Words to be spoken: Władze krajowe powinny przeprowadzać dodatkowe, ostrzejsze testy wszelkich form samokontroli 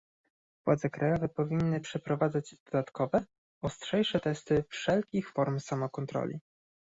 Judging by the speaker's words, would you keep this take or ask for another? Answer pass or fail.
pass